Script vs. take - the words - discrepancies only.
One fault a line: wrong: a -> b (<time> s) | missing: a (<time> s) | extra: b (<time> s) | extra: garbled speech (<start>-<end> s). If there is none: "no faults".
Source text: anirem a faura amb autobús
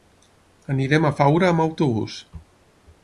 no faults